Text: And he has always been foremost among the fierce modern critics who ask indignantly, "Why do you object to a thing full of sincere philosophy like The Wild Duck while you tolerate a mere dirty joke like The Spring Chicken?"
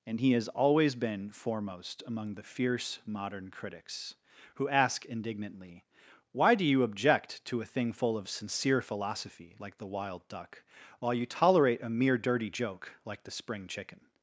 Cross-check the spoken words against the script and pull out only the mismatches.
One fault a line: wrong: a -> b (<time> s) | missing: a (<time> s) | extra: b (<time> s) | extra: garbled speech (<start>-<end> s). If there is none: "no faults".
no faults